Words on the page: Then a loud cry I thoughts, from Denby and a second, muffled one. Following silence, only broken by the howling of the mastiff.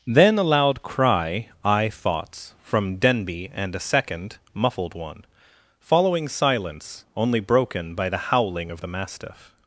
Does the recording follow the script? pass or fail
pass